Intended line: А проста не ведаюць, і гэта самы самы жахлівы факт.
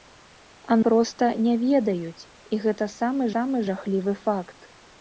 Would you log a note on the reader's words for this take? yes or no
no